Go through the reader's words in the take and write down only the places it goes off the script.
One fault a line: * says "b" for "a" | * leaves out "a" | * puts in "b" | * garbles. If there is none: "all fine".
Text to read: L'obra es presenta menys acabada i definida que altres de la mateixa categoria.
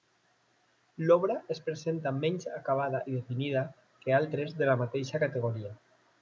all fine